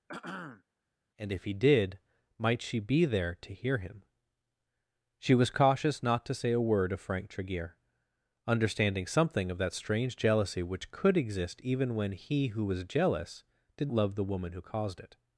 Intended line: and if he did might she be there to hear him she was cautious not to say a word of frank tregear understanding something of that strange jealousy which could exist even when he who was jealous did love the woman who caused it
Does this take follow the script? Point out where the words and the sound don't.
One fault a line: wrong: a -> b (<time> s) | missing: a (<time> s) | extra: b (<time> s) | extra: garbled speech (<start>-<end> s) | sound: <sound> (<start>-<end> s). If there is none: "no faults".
sound: throat clearing (0.1-0.6 s)